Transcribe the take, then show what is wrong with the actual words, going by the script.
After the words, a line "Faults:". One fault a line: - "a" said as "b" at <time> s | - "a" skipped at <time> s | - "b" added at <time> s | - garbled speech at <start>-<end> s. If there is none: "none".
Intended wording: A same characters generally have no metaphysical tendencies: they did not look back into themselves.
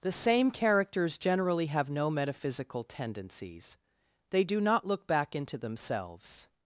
The same characters generally have no metaphysical tendencies: they do not look back into themselves.
Faults:
- "A" said as "The" at 0.0 s
- "did" said as "do" at 4.4 s